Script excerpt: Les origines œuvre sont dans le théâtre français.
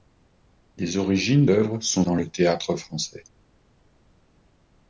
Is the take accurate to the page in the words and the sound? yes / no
yes